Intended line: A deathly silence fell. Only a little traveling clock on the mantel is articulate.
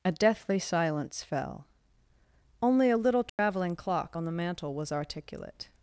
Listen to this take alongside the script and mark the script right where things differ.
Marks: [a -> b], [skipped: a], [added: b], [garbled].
A deathly silence fell. Only a little traveling clock on the mantel [is -> was] articulate.